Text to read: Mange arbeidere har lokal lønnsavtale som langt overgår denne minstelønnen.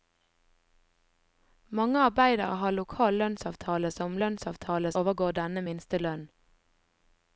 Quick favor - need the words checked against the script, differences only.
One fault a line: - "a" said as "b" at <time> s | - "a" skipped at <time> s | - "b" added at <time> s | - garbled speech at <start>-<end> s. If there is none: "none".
- "langt" said as "lønnsavtale" at 4.2 s